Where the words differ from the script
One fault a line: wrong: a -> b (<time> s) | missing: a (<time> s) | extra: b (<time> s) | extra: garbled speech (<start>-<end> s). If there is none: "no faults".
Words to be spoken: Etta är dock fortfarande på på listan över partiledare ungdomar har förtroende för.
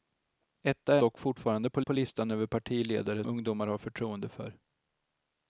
no faults